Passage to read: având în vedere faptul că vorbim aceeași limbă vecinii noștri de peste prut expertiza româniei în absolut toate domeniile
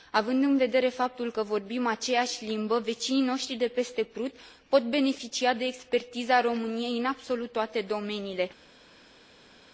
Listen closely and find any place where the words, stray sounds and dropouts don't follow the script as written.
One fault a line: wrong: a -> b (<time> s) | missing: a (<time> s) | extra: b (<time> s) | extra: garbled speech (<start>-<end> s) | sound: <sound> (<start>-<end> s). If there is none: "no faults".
extra: pot beneficia de (4.7 s)